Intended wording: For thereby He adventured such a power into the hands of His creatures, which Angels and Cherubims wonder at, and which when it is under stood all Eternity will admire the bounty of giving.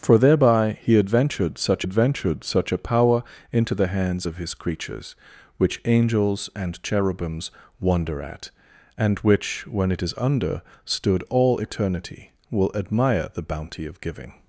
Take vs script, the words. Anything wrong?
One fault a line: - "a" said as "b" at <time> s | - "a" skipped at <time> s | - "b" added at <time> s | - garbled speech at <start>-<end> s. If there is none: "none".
- "adventured such" added at 1.8 s